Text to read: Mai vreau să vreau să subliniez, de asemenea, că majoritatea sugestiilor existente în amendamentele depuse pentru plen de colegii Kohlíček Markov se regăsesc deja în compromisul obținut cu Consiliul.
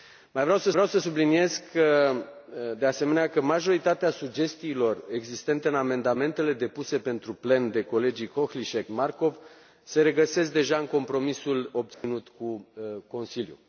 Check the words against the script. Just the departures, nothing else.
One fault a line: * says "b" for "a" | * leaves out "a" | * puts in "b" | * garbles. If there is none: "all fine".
all fine